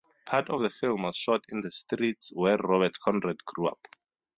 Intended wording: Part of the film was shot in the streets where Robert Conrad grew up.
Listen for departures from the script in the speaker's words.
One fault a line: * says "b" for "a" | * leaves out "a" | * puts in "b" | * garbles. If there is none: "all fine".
all fine